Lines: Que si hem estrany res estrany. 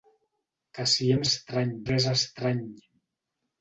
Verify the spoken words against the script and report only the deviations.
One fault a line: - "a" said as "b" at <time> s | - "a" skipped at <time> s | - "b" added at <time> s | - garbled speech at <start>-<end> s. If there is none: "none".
none